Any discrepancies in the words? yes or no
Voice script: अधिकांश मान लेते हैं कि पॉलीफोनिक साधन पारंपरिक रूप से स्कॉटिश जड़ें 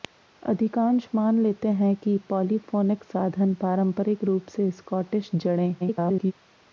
yes